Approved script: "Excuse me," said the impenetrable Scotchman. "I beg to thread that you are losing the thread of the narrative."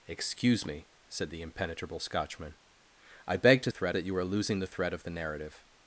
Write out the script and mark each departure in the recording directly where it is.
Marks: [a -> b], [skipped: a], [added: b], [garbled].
"Excuse me," said the impenetrable Scotchman. "I beg to thread that you are losing the thread of the narrative."